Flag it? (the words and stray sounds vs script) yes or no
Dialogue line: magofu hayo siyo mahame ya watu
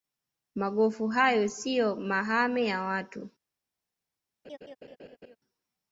yes